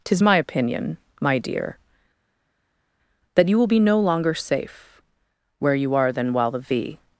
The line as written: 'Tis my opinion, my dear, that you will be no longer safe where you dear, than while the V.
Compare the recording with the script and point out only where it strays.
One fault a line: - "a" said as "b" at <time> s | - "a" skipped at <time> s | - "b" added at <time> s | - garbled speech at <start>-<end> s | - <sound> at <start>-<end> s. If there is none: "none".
- "dear" said as "are" at 5.9 s